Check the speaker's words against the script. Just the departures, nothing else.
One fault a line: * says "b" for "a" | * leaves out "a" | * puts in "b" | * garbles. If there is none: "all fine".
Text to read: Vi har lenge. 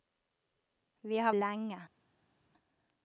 all fine